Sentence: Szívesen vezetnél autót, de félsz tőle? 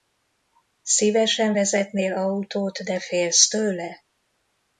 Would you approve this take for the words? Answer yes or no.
yes